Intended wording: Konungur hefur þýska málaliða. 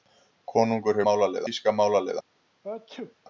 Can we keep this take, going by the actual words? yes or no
no